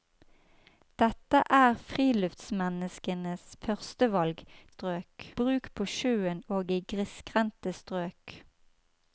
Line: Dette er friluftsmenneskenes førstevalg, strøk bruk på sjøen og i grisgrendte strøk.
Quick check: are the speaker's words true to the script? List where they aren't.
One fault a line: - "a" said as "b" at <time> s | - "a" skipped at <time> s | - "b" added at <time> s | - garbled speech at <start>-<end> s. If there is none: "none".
none